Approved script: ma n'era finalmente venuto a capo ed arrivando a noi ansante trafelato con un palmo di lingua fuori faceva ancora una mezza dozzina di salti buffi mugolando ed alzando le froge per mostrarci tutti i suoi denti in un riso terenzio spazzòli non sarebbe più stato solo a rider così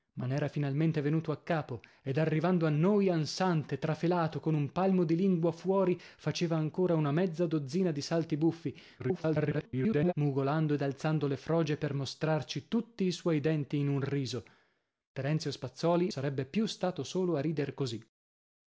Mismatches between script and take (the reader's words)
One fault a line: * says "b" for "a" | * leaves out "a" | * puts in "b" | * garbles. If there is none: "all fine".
* garbles
* leaves out "non"